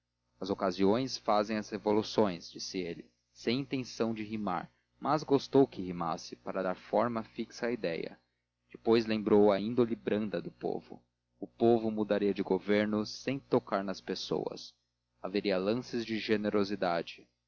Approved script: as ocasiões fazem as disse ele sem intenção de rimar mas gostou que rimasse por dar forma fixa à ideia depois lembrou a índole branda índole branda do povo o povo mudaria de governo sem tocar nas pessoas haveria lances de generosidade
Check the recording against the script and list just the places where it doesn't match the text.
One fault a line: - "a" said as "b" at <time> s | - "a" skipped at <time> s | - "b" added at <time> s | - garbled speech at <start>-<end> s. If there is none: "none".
- "revoluções" added at 1.7 s
- "por" said as "para" at 6.4 s
- "índole branda" skipped at 10.4 s